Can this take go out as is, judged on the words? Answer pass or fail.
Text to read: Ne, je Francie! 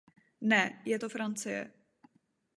fail